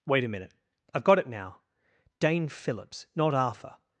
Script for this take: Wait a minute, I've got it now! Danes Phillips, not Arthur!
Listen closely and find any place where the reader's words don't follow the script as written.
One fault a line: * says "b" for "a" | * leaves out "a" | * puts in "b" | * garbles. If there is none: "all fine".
* says "Dane" for "Danes"